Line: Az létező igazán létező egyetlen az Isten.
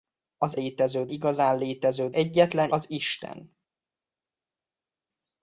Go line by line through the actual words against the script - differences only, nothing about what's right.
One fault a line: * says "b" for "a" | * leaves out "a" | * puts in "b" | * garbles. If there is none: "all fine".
all fine